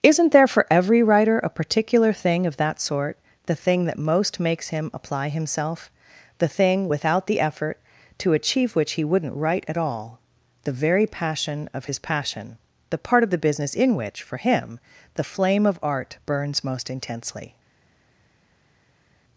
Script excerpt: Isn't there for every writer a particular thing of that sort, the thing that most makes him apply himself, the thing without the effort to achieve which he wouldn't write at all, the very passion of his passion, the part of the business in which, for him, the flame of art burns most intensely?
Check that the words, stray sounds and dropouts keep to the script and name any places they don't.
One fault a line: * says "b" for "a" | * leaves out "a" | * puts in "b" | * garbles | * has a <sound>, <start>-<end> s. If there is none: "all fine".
all fine